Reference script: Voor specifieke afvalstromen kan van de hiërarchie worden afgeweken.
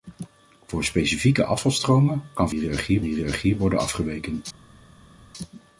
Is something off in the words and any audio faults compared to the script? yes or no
yes